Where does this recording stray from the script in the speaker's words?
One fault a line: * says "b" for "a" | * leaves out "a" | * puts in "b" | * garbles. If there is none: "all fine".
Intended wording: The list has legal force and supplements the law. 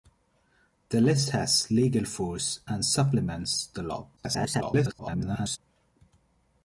* garbles